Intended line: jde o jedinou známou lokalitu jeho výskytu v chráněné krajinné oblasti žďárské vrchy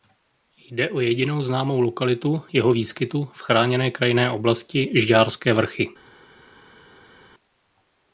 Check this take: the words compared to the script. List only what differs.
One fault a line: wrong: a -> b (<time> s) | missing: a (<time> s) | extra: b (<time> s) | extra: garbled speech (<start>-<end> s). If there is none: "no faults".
no faults